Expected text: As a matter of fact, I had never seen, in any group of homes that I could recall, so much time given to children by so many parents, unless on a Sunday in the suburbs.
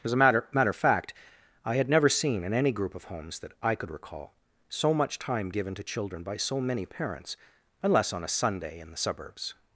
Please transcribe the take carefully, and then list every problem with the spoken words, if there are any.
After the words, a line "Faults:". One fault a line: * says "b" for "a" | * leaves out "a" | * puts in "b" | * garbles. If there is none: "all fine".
As a matter matter of fact, I had never seen, in any group of homes that I could recall, so much time given to children by so many parents, unless on a Sunday in the suburbs.
Faults:
* puts in "matter"